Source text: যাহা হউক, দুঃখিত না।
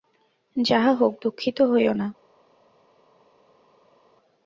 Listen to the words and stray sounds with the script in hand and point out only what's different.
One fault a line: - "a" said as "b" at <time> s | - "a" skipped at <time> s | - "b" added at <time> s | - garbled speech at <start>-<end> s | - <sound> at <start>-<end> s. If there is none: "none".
- "হইও" added at 1.6 s